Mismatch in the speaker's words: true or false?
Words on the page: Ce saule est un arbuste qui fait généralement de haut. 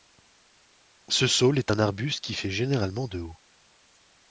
false